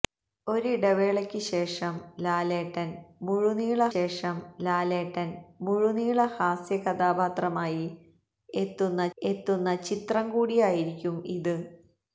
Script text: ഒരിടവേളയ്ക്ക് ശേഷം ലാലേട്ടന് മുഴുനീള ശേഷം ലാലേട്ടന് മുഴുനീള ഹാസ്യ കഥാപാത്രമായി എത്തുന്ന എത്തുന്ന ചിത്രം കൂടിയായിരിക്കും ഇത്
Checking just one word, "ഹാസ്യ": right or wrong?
right